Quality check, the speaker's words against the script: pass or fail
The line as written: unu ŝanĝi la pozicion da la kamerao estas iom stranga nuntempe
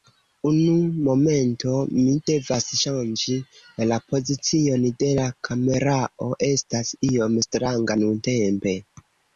fail